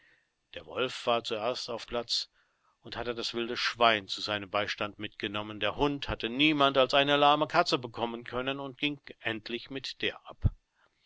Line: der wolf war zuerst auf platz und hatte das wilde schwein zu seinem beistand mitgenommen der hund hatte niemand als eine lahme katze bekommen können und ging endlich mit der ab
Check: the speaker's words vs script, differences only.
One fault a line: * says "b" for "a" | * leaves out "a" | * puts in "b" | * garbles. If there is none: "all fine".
all fine